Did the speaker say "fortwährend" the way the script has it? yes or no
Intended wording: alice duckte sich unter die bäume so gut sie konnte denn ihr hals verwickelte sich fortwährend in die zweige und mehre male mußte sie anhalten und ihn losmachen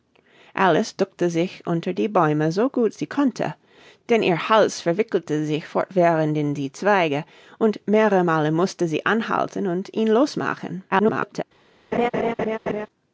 yes